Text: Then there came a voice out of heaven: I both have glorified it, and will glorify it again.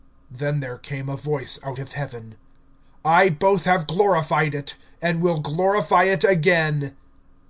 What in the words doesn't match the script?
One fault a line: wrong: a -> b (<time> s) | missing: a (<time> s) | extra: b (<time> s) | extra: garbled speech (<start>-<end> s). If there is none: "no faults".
no faults